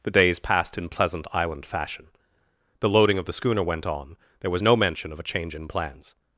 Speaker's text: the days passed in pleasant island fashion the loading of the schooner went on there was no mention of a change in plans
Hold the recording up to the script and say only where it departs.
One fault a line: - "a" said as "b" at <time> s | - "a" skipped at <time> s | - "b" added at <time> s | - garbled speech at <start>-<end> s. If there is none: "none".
none